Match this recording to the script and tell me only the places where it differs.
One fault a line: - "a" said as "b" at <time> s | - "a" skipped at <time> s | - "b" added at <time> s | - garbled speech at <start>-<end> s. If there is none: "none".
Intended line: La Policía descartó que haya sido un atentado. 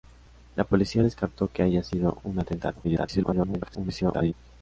- garbled speech at 2.8-4.3 s